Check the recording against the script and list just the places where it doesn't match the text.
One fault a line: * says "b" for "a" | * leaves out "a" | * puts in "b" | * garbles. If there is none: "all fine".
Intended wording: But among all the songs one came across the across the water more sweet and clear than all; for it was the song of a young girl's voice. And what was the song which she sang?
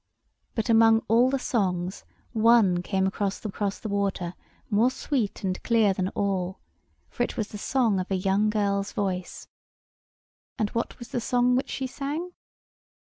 all fine